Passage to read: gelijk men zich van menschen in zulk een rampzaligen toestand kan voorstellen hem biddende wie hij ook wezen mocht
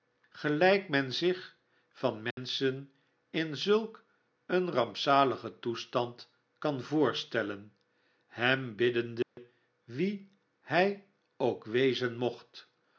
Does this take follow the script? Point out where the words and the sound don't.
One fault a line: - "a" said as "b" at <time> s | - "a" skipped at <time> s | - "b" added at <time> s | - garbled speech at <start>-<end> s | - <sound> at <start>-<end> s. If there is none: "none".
- dropout at 2.3-2.4 s
- dropout at 9.2-9.4 s